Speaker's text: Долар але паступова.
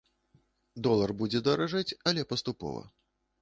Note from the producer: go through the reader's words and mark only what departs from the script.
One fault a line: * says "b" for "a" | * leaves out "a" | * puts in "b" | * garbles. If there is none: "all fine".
* puts in "будзе даражэць"